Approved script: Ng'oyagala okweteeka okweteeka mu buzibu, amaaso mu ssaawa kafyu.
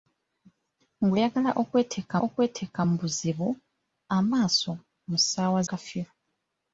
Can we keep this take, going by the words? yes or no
yes